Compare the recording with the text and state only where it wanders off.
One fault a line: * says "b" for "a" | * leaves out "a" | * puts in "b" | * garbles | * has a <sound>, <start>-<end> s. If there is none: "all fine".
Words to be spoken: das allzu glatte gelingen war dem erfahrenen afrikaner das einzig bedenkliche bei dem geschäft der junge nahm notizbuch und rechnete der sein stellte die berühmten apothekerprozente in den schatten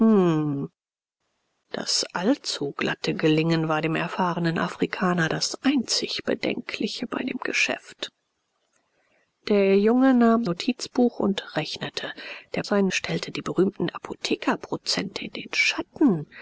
all fine